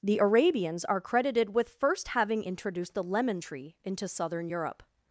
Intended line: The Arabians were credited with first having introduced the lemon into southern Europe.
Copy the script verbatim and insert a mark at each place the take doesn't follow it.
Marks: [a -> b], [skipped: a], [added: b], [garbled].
The Arabians [were -> are] credited with first having introduced the lemon [added: tree] into southern Europe.